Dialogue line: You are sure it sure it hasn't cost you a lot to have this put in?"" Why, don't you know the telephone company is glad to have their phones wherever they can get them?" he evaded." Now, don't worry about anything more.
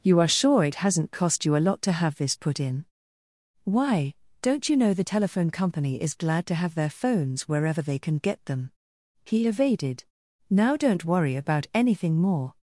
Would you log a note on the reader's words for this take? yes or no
yes